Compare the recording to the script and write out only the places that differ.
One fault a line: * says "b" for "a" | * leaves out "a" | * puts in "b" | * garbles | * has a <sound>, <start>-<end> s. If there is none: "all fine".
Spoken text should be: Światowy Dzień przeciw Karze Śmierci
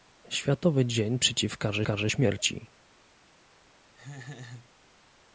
* puts in "Karze"
* has a laugh, 3.9-4.7 s